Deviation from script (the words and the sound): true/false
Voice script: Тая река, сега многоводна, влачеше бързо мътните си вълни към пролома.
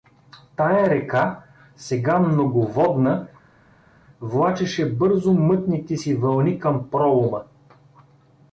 false